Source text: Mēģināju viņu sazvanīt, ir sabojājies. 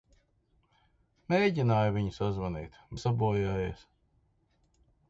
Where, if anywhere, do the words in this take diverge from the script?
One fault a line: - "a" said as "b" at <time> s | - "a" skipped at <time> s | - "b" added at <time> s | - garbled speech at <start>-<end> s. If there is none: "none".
none